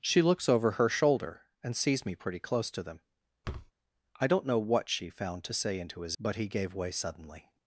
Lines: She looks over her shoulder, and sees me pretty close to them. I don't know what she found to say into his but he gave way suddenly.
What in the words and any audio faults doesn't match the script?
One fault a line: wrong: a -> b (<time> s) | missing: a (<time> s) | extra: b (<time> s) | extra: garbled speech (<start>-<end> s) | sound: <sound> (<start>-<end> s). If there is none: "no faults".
sound: thud (3.4-3.7 s)